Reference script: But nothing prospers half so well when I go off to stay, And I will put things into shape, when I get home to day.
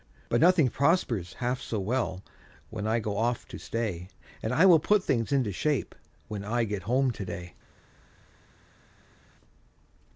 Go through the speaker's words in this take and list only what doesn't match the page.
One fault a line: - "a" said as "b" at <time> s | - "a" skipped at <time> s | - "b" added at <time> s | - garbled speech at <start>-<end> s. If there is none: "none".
none